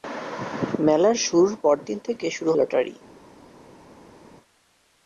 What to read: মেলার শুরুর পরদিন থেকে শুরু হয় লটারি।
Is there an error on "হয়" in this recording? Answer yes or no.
yes